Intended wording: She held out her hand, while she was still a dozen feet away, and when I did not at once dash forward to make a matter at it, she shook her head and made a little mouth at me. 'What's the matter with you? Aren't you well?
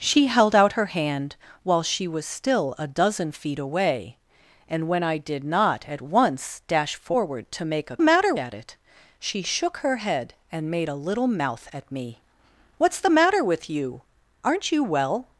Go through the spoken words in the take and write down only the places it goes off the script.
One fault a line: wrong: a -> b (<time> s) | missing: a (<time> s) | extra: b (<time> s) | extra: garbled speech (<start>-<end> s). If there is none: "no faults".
no faults